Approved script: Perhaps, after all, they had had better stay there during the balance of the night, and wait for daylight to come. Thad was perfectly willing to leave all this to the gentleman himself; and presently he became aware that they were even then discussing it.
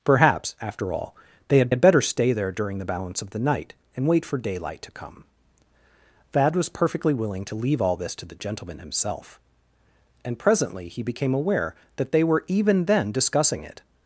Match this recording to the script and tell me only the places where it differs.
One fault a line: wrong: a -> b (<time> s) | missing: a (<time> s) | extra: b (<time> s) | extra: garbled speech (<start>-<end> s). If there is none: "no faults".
no faults